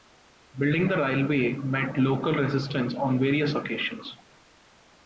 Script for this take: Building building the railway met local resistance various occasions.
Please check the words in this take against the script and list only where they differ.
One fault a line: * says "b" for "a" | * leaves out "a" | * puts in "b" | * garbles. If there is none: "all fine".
* leaves out "building"
* puts in "on"